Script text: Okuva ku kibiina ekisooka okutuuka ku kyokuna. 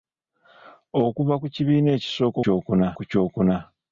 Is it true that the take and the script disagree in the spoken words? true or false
true